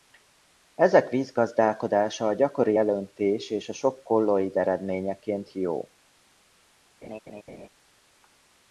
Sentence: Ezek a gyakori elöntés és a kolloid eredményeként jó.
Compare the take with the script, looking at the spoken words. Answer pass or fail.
fail